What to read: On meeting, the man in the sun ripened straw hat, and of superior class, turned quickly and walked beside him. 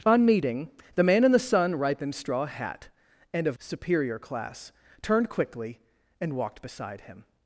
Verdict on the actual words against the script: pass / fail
pass